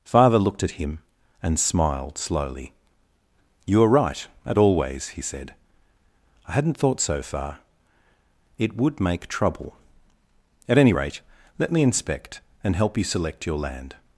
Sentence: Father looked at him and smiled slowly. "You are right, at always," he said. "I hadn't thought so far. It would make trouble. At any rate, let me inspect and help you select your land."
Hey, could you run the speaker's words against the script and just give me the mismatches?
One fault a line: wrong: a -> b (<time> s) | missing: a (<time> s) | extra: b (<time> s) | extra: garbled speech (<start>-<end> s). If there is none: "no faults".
no faults